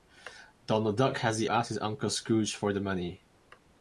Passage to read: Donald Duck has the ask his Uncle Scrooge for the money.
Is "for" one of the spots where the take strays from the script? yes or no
no